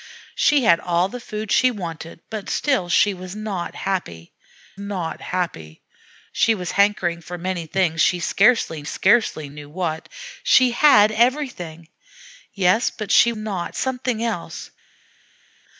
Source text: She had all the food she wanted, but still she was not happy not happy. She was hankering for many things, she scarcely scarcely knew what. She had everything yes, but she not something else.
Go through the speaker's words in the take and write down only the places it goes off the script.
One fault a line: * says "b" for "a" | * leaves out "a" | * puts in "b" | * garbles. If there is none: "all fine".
all fine